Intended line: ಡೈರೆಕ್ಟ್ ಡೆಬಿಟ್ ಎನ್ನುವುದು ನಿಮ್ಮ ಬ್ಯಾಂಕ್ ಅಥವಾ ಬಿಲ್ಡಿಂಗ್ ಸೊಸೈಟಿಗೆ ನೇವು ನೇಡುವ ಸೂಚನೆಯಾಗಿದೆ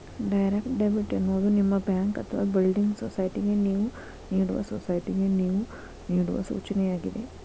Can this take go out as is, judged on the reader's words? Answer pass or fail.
fail